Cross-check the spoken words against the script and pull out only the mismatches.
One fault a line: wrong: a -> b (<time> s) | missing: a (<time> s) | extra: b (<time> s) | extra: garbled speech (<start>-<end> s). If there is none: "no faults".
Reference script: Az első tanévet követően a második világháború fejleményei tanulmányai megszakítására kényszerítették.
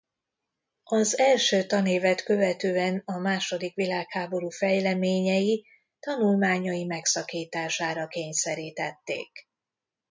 no faults